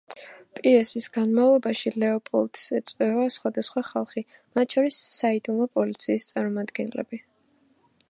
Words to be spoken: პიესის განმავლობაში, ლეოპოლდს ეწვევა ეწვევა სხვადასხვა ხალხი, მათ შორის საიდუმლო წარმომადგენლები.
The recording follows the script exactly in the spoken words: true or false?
false